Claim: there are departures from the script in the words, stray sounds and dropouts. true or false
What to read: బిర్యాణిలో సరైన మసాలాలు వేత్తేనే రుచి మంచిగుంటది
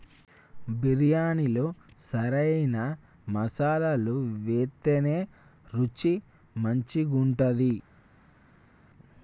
false